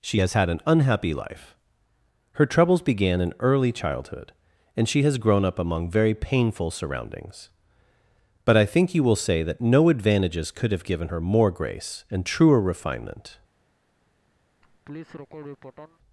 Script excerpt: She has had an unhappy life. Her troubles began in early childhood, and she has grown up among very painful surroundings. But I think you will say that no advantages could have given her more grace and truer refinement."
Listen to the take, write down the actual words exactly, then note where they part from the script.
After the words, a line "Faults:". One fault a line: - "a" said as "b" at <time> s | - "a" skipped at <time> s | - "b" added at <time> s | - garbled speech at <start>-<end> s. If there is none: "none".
She has had an unhappy life. Her troubles began in early childhood, and she has grown up among very painful surroundings. But I think you will say that no advantages could have given her more grace and truer refinement."
Faults:
none